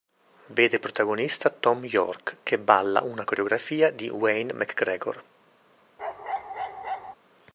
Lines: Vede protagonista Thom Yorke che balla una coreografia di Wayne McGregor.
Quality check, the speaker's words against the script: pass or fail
pass